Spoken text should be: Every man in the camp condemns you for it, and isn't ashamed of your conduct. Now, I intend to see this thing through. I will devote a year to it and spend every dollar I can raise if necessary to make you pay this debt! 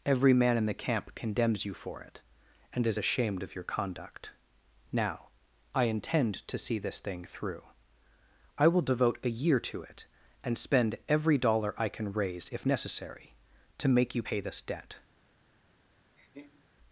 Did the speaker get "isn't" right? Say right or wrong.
wrong